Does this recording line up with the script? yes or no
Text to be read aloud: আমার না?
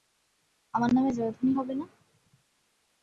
no